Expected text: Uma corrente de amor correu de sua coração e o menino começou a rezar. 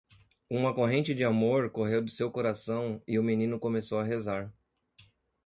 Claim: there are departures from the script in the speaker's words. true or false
true